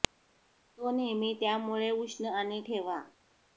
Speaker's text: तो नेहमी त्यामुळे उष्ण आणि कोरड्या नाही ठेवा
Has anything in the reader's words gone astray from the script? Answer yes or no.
yes